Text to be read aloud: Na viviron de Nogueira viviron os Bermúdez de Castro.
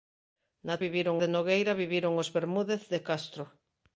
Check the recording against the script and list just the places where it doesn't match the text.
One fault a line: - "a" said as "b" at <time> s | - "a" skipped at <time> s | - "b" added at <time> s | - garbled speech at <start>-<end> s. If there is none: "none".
none